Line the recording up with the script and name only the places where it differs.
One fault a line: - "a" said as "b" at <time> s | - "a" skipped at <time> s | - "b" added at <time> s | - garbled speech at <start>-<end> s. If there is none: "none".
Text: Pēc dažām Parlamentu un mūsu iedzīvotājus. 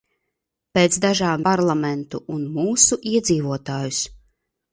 none